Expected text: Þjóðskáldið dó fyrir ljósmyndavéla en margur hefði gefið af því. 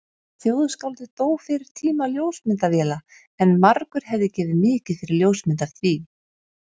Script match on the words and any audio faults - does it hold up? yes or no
no